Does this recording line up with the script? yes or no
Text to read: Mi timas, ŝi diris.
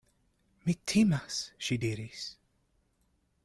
yes